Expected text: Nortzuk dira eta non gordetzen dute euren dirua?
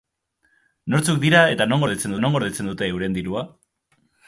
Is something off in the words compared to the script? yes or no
yes